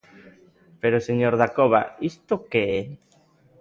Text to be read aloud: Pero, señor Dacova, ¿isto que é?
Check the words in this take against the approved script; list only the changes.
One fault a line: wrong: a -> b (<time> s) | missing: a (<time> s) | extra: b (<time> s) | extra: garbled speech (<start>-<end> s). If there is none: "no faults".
no faults